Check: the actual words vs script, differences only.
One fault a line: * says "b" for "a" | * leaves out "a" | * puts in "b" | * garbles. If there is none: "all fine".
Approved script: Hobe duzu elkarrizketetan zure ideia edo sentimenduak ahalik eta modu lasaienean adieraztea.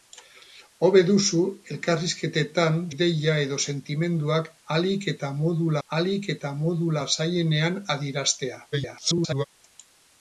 * leaves out "zure"
* puts in "ahalik eta modu"
* garbles